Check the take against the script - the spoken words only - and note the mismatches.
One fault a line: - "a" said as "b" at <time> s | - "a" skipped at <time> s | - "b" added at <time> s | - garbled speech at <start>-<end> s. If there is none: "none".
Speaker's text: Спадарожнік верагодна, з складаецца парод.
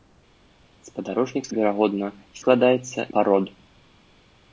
none